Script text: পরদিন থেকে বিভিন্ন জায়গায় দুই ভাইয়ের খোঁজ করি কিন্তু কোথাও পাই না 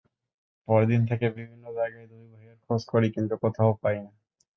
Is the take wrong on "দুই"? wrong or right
right